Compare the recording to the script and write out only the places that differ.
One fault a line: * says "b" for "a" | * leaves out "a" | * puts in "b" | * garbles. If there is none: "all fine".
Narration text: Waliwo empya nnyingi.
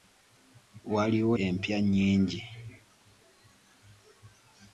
all fine